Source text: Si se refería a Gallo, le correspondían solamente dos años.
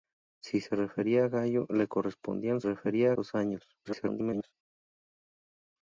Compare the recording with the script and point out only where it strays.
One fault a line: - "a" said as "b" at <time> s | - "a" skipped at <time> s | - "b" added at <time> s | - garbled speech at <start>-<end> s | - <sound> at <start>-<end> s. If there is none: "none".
- "solamente" said as "refería" at 2.6 s
- garbled speech at 3.8-4.5 s